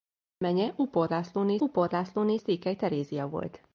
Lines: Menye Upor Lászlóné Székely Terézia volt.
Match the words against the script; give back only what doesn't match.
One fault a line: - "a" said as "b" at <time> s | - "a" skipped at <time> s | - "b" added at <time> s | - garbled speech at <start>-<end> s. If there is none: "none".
- "Upor Lászlóné" added at 1.6 s